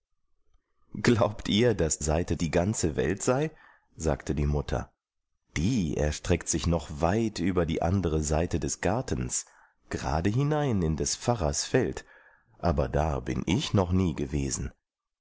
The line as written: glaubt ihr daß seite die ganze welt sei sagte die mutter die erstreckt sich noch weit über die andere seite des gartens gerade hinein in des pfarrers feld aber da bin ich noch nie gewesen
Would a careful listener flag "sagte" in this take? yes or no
no